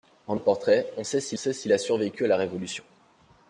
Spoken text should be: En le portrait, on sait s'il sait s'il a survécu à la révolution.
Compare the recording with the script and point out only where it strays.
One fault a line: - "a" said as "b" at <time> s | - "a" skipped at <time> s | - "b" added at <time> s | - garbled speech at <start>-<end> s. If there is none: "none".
none